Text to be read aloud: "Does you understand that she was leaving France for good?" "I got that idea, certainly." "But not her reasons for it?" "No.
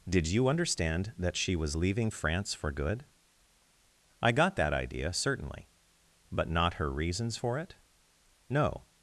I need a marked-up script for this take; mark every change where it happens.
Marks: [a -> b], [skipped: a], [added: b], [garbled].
["Does -> Did] you understand that she was leaving France for good?" "I got that idea, certainly." "But not her reasons for it?" "No.